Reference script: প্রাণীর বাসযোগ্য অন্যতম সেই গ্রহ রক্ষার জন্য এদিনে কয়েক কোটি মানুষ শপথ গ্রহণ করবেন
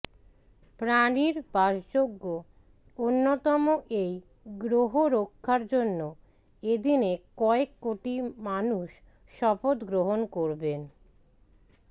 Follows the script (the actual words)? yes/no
no